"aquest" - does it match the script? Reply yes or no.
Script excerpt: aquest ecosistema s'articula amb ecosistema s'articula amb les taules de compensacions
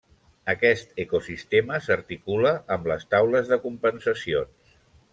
yes